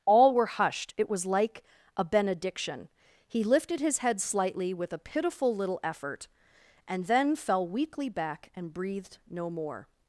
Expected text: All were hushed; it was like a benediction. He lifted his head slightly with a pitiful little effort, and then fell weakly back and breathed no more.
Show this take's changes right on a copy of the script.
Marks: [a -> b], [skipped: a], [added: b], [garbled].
All were hushed; it was like a benediction. He lifted his head slightly with a pitiful little effort, and then fell weakly back and breathed no more.